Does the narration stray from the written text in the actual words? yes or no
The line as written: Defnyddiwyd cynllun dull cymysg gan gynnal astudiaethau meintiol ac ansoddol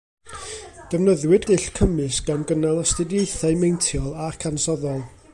yes